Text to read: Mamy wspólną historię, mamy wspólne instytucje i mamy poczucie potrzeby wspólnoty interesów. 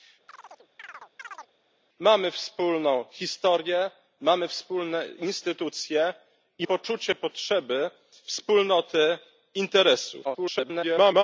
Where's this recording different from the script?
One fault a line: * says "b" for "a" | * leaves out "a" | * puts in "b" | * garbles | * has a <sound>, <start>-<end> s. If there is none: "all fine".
* has a chirp, 0.3-1.5 s
* leaves out "mamy"
* garbles